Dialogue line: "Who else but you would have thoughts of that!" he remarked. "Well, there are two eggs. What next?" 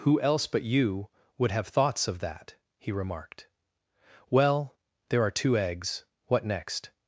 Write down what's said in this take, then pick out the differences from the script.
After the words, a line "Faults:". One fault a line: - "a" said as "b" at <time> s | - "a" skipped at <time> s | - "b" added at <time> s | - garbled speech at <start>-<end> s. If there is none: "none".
"Who else but you would have thoughts of that!" he remarked. "Well, there are two eggs. What next?"
Faults:
none